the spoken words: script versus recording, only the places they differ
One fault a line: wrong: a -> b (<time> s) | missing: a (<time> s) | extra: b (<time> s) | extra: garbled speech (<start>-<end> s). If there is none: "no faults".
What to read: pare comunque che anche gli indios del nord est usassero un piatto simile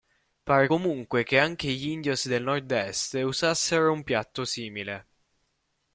no faults